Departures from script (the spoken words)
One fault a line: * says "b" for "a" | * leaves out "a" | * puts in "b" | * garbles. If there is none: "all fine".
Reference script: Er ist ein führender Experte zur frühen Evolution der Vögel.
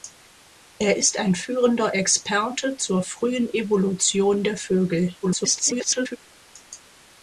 * garbles